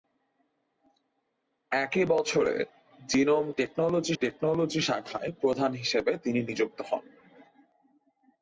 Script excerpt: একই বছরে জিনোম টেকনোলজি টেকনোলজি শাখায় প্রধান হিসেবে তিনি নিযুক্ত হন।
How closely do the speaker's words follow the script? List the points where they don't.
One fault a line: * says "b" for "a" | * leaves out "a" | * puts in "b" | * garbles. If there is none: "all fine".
all fine